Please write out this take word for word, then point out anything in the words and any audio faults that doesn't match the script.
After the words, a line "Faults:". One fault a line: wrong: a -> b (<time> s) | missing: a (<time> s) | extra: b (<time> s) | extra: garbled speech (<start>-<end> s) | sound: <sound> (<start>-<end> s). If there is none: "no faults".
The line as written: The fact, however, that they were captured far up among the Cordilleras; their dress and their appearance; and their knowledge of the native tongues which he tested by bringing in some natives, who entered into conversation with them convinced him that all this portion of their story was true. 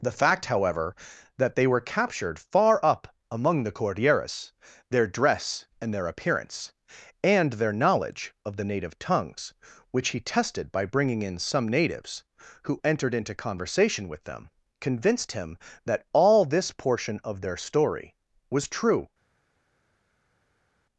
The fact, however, that they were captured far up among the Cordilleras; their dress and their appearance; and their knowledge of the native tongues which he tested by bringing in some natives, who entered into conversation with them convinced him that all this portion of their story was true.
Faults:
no faults